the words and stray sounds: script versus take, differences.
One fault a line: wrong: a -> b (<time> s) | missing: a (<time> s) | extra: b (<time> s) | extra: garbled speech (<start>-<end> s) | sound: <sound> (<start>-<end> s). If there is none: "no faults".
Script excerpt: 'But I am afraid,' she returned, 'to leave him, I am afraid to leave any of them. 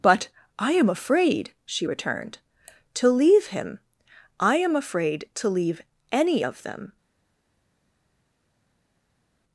no faults